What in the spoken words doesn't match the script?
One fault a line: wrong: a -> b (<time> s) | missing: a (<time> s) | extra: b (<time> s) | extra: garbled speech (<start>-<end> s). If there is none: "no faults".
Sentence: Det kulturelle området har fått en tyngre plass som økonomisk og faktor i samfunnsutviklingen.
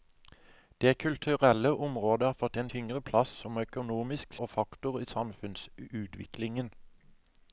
no faults